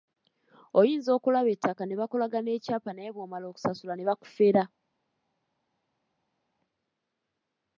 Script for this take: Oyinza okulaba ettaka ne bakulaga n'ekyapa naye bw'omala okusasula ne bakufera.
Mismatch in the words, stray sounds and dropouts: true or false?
false